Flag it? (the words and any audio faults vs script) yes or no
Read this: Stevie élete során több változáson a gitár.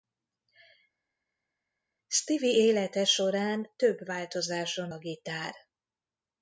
no